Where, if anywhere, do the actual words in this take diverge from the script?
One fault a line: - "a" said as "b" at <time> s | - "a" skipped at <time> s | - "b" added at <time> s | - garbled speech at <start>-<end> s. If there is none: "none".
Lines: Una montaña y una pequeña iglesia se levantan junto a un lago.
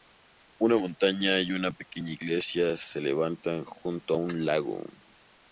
none